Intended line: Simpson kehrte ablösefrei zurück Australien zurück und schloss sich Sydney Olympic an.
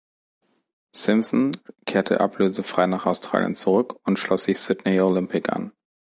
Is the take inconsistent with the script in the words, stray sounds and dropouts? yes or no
yes